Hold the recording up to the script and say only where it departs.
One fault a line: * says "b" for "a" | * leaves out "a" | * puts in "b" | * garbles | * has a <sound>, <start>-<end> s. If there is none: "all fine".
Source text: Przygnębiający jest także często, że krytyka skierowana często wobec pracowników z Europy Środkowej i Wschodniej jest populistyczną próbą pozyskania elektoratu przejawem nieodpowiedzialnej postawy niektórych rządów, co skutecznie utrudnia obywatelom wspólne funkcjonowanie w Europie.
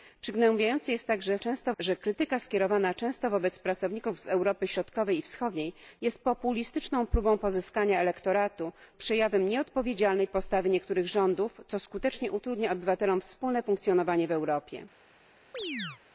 * has a chirp, 15.5-16.0 s